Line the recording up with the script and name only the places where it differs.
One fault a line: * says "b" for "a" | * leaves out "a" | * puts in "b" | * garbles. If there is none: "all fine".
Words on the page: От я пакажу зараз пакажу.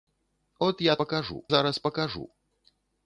all fine